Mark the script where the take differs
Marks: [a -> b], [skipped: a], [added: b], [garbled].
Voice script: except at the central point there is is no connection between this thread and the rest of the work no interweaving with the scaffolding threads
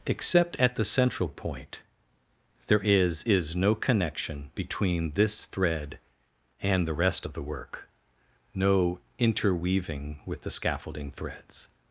except at the central point there is is no connection between this thread and the rest of the work no interweaving with the scaffolding threads